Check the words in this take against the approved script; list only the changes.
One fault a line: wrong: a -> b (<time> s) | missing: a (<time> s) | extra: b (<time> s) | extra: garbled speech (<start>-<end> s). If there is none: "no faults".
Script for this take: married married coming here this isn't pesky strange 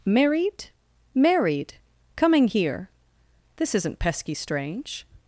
no faults